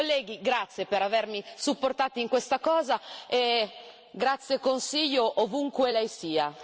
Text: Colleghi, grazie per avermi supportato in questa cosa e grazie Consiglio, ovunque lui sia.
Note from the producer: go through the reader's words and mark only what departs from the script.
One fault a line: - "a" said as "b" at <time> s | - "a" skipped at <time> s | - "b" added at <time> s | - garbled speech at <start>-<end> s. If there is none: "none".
- "lui" said as "lei" at 5.9 s